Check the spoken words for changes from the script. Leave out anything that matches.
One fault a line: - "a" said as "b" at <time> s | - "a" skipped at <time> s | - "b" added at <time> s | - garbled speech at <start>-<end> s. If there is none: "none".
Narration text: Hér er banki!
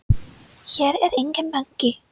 - "enginn" added at 1.2 s